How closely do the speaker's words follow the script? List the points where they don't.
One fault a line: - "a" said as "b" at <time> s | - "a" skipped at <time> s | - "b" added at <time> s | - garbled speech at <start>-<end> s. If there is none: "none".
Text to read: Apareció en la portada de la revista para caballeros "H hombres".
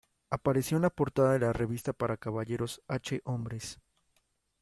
none